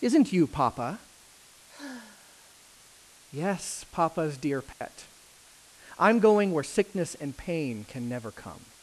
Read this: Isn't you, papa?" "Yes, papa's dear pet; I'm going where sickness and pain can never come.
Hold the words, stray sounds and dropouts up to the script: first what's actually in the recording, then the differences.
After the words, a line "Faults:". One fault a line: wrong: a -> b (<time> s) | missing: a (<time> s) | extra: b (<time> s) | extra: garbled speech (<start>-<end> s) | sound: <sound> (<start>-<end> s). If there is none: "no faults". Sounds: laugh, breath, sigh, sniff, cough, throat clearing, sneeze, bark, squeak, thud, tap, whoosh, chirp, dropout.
Isn't you, papa?" "Yes, papa's dear pet; I'm going where sickness and pain can never come.
Faults:
sound: sigh (1.7-2.6 s)
sound: dropout (4.7-4.8 s)